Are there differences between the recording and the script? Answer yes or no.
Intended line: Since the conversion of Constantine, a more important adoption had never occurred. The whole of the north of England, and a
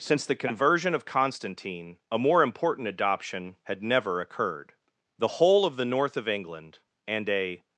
no